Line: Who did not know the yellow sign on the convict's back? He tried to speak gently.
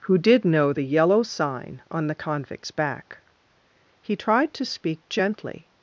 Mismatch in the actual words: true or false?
true